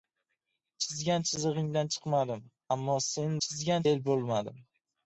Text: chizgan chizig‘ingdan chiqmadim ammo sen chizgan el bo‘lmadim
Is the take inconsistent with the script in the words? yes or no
no